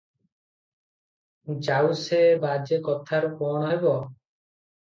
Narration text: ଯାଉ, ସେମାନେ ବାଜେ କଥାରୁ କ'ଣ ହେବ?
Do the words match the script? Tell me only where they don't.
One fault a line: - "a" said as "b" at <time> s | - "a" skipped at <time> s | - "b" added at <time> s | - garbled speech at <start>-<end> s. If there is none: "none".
- "ସେମାନେ" said as "ସେ" at 2.0 s